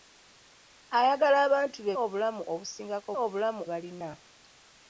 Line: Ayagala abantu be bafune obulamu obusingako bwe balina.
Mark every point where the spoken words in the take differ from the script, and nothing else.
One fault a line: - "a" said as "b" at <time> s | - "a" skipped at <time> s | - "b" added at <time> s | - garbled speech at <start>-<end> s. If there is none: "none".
- "bafune" skipped at 1.9 s
- "bwe" said as "obulamu" at 3.2 s